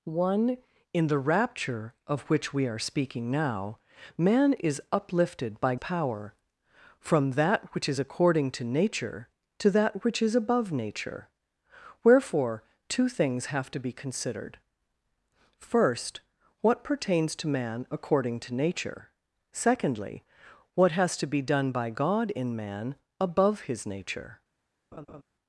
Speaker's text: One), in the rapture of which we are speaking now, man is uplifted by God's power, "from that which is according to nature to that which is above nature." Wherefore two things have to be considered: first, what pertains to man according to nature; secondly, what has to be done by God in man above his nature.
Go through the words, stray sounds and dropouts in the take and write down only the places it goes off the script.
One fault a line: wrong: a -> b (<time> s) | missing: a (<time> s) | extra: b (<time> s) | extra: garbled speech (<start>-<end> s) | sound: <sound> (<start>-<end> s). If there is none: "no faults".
missing: God's (5.8 s)
sound: laugh (24.9-25.2 s)